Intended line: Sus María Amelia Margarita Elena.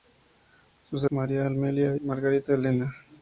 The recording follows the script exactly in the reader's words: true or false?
true